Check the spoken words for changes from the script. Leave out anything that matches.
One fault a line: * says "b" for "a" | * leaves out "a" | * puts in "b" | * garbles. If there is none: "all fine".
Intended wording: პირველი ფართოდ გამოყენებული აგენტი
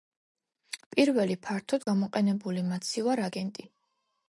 * puts in "მაცივარ"